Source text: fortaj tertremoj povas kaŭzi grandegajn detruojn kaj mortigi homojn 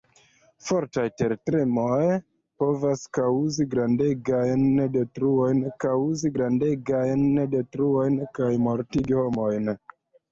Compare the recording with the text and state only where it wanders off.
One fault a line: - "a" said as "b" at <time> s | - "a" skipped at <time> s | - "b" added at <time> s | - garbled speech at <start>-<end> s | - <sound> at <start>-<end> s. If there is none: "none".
- "kaŭzi grandegajn detruojn" added at 5.9 s